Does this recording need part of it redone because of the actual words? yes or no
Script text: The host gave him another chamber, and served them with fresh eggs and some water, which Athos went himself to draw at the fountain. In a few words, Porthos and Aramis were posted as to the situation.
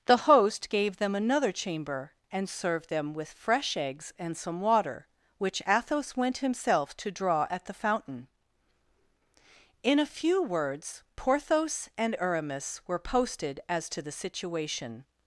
yes